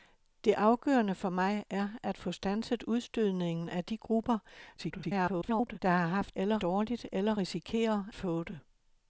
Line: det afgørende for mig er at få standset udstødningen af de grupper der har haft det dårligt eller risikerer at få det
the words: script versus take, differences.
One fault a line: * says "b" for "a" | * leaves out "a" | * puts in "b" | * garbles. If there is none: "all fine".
* garbles
* says "eller" for "det"
* leaves out "at"